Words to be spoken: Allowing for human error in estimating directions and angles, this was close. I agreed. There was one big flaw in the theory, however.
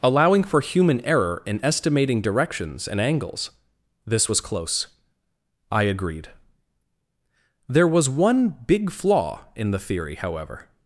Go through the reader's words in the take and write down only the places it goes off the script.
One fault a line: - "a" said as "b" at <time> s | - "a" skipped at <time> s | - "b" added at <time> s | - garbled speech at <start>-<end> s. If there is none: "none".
none